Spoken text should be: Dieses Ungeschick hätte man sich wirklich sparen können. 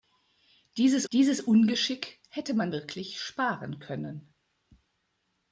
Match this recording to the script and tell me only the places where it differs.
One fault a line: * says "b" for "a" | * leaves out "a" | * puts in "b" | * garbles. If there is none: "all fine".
* puts in "dieses"
* leaves out "sich"